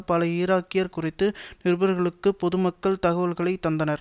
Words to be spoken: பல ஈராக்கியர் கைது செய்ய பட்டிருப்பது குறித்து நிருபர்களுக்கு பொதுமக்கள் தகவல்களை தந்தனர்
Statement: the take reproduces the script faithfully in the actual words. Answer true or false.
false